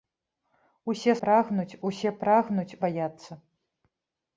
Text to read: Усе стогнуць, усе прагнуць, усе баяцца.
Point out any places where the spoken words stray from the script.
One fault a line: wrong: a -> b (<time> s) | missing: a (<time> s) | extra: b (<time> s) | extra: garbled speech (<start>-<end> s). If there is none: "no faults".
wrong: стогнуць -> прагнуць (1.2 s)
missing: усе (2.8 s)